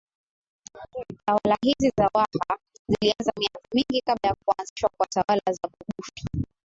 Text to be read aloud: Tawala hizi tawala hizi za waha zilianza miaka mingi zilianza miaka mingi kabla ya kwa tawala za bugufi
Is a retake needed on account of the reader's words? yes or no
yes